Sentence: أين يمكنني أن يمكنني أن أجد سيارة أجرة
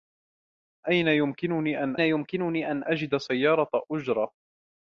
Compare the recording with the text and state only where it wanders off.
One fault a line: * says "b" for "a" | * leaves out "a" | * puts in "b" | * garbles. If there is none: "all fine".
all fine